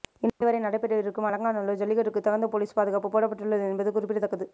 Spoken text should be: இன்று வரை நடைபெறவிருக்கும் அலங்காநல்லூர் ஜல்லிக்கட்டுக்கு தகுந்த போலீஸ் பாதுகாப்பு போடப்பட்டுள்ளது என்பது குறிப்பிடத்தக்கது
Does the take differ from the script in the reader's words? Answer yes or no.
no